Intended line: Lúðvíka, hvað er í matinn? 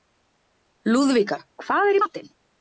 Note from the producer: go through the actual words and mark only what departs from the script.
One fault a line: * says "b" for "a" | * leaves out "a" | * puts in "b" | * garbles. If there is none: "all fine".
all fine